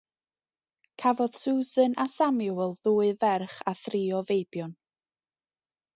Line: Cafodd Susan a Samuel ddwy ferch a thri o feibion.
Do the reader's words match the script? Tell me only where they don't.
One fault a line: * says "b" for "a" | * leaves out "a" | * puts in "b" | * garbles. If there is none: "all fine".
all fine